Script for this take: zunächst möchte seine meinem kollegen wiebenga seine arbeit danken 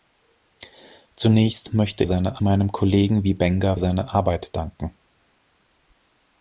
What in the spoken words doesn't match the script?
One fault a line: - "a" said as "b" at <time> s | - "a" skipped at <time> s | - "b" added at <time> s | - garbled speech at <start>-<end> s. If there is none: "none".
none